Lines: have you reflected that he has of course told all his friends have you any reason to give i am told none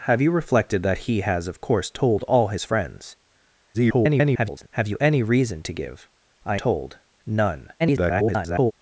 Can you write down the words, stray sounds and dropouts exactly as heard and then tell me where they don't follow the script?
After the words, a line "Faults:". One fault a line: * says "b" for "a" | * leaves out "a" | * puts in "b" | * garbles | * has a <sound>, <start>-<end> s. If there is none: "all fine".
have you reflected that he has of course told all his friends [garbled] have you any reason to give i told none [garbled]
Faults:
* garbles
* leaves out "am"
* garbles